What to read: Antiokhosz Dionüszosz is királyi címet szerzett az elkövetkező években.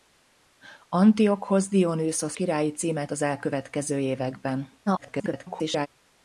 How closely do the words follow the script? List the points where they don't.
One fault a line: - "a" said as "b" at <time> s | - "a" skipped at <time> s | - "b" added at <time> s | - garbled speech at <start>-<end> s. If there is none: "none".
- "is" skipped at 2.4 s
- "szerzett" skipped at 3.1 s
- garbled speech at 4.9-5.9 s